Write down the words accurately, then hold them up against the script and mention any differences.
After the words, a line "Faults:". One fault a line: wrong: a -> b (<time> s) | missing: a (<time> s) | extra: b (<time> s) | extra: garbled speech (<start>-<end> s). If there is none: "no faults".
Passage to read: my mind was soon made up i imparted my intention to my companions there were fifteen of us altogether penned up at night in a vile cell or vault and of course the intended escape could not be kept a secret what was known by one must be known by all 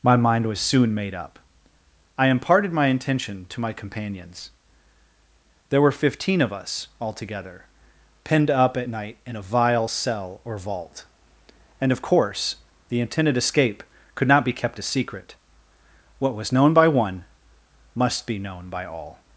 my mind was soon made up i imparted my intention to my companions there were fifteen of us altogether penned up at night in a vile cell or vault and of course the intended escape could not be kept a secret what was known by one must be known by all
Faults:
no faults